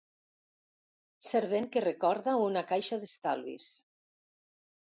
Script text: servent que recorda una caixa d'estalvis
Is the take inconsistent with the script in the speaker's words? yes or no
no